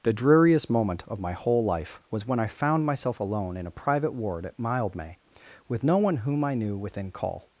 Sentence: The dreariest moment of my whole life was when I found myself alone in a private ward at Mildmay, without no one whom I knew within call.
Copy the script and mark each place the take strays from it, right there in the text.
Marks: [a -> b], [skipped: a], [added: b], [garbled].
The dreariest moment of my whole life was when I found myself alone in a private ward at Mildmay, [without -> with] no one whom I knew within call.